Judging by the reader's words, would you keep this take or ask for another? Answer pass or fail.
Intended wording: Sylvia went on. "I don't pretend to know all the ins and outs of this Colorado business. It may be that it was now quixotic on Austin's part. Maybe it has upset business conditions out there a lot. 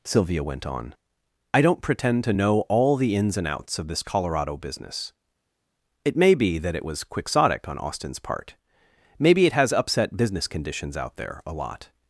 fail